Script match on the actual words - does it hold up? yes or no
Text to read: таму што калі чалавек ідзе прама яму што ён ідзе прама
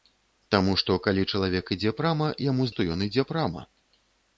yes